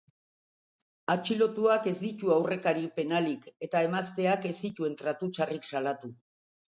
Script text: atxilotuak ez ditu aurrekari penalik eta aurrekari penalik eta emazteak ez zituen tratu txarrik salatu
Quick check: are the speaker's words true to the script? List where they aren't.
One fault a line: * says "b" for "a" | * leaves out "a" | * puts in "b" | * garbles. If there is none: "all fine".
* leaves out "aurrekari penalik eta"